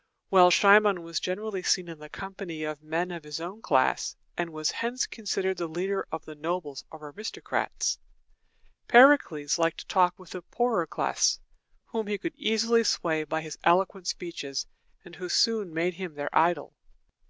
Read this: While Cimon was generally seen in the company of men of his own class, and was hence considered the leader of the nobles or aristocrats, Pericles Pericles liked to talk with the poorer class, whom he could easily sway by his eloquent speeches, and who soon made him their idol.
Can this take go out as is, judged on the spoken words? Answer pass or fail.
fail